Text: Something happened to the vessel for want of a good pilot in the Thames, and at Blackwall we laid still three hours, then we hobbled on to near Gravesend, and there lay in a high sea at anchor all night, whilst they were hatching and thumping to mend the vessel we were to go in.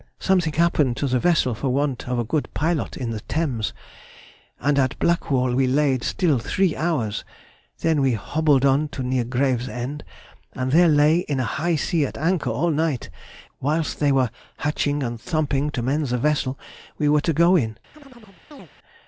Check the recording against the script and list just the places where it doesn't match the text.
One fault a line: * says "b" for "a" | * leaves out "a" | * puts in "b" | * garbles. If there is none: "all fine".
all fine